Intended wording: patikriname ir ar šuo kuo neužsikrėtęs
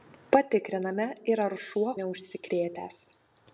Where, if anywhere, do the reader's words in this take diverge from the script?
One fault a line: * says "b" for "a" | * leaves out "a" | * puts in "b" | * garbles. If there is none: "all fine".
* leaves out "kuo"